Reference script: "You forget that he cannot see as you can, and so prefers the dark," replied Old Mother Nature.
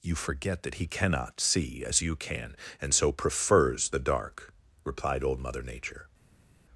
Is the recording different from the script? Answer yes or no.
no